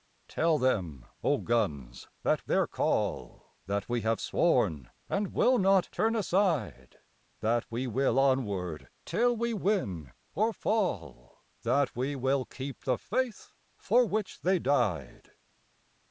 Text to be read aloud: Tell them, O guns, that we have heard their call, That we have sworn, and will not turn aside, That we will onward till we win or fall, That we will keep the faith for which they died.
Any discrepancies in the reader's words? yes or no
yes